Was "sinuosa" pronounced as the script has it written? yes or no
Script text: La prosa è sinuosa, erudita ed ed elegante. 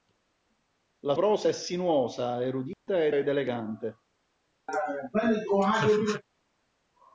yes